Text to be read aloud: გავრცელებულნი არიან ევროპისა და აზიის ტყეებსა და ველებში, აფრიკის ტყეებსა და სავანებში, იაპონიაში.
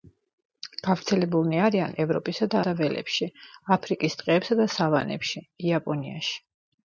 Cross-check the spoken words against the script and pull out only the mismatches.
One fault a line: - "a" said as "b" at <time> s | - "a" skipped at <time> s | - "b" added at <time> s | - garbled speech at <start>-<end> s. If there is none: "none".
- "აზიის ტყეებსა" skipped at 2.6 s